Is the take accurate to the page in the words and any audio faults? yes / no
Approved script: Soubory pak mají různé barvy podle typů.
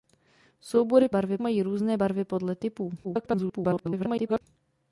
no